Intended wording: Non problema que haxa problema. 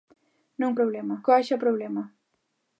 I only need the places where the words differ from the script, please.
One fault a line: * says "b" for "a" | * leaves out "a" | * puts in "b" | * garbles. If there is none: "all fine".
all fine